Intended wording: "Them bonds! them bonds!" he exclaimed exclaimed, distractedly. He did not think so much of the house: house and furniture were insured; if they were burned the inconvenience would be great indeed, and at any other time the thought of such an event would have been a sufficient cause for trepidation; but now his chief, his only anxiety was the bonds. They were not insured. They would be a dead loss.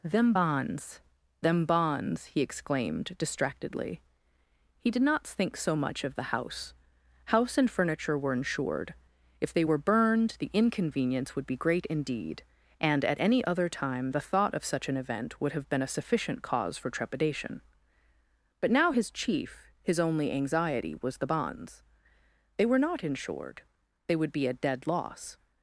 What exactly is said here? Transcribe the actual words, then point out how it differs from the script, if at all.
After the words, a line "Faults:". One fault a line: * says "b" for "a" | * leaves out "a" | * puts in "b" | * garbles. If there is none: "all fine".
"Them bonds! them bonds!" he exclaimed, distractedly. He did not think so much of the house: house and furniture were insured; if they were burned the inconvenience would be great indeed, and at any other time the thought of such an event would have been a sufficient cause for trepidation; but now his chief, his only anxiety was the bonds. They were not insured. They would be a dead loss.
Faults:
* leaves out "exclaimed"